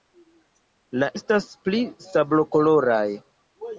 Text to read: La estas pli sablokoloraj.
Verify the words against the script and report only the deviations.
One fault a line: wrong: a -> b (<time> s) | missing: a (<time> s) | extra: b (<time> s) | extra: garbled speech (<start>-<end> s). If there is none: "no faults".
no faults